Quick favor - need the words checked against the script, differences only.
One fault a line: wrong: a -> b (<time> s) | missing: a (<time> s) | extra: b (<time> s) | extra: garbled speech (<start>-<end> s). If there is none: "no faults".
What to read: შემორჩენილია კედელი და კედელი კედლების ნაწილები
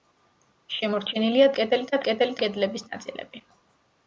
no faults